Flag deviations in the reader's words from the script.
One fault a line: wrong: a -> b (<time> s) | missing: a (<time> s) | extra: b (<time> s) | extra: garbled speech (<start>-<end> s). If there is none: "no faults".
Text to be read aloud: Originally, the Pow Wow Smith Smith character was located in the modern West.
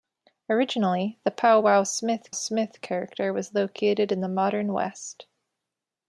no faults